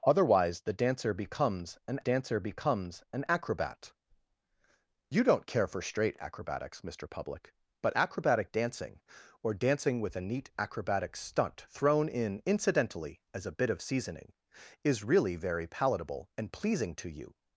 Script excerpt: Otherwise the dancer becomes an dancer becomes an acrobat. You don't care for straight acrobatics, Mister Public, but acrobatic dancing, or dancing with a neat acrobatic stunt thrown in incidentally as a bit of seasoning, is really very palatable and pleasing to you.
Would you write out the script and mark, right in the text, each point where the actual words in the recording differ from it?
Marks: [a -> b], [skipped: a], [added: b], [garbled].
Otherwise the dancer becomes an dancer becomes an acrobat. You don't care for straight acrobatics, Mister Public, but acrobatic dancing, or dancing with a neat acrobatic stunt thrown in incidentally as a bit of seasoning, is really very palatable and pleasing to you.